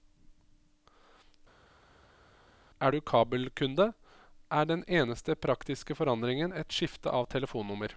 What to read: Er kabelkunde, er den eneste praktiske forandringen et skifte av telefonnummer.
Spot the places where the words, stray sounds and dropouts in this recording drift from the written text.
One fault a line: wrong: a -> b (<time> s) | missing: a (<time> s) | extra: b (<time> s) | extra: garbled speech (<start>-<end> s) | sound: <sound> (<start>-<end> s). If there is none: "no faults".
extra: du (2.9 s)